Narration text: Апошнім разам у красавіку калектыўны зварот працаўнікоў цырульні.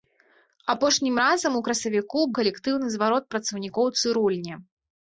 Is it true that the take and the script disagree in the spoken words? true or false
false